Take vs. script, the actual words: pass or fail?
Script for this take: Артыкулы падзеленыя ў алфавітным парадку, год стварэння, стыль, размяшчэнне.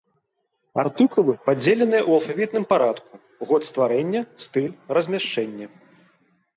pass